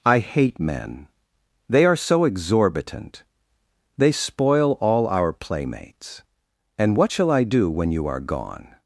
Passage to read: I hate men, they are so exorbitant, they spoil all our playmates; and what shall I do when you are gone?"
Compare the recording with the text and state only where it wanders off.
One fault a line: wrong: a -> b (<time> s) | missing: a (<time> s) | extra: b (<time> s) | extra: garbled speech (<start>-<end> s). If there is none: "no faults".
no faults